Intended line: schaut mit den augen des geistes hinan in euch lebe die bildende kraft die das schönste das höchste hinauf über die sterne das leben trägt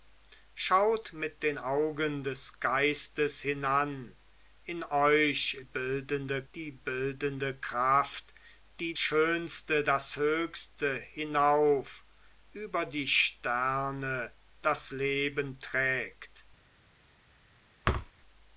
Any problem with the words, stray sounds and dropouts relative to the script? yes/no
yes